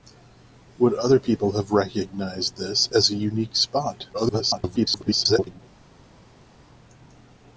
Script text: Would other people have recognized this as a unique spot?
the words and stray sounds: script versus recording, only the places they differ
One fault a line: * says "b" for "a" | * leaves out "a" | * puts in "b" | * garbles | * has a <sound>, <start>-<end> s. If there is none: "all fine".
* garbles